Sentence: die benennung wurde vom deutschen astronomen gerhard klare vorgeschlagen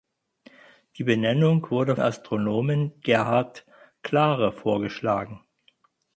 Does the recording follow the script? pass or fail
fail